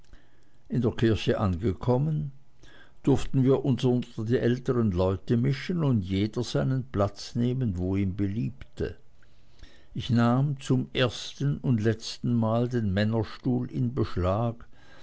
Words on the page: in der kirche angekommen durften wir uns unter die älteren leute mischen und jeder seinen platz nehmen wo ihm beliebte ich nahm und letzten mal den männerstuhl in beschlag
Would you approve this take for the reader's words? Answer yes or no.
no